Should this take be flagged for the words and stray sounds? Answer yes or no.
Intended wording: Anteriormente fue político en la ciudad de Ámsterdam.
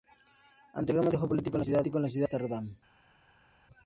no